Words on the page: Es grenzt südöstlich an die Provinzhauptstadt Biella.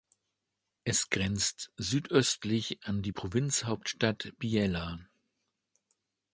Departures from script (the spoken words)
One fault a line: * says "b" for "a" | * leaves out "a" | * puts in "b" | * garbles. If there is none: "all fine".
all fine